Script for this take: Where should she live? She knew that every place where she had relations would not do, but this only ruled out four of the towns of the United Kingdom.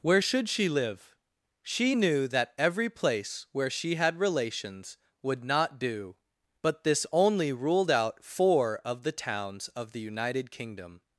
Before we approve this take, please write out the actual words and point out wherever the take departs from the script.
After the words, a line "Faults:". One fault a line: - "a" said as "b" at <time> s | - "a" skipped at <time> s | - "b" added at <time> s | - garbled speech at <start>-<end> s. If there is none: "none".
Where should she live? She knew that every place where she had relations would not do, but this only ruled out four of the towns of the United Kingdom.
Faults:
none